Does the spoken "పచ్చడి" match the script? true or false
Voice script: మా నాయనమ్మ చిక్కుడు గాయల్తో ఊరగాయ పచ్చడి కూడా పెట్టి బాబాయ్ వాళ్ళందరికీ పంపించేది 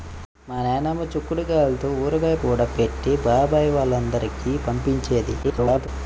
false